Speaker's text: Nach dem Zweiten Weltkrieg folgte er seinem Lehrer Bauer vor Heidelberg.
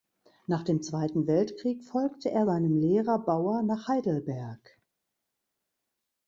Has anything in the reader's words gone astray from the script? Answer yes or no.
yes